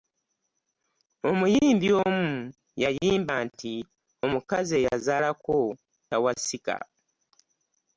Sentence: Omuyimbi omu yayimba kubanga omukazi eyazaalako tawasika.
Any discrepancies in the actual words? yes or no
yes